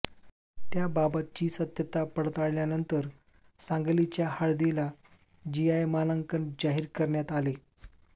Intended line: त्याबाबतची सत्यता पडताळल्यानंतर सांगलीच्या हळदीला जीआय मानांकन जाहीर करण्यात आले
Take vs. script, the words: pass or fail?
pass